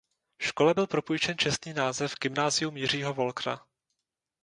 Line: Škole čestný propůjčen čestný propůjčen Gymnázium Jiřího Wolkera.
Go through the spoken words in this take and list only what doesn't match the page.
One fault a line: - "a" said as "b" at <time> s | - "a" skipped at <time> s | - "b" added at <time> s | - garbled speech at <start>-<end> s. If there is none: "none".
- "čestný" said as "byl" at 0.7 s
- "propůjčen" said as "název" at 1.7 s